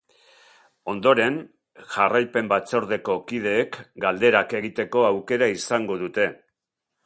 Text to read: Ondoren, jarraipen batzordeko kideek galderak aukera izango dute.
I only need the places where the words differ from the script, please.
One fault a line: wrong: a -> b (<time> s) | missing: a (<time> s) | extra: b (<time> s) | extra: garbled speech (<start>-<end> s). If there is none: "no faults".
extra: egiteko (4.6 s)